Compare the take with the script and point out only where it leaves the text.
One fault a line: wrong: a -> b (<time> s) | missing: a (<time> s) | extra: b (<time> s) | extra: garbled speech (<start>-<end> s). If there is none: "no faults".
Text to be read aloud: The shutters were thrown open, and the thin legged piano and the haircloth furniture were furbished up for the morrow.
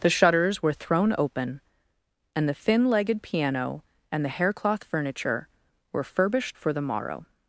missing: up (6.6 s)